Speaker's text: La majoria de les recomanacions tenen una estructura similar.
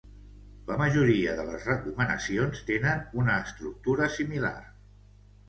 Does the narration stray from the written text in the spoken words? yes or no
no